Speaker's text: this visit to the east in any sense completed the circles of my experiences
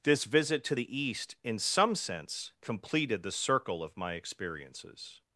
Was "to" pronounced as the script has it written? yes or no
yes